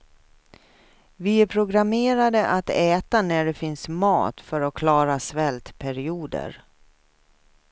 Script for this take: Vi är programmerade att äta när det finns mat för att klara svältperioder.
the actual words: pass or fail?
pass